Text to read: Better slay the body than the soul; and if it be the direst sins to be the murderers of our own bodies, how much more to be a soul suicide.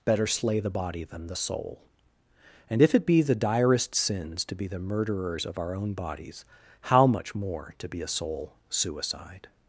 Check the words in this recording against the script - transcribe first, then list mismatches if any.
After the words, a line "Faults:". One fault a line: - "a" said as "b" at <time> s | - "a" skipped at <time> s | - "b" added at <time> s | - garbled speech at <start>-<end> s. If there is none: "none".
Better slay the body than the soul; and if it be the direst sins to be the murderers of our own bodies, how much more to be a soul suicide.
Faults:
none